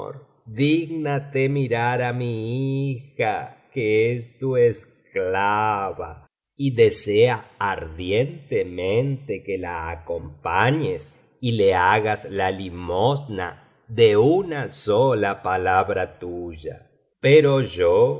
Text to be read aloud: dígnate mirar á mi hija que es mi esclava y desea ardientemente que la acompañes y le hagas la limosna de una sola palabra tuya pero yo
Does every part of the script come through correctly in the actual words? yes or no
no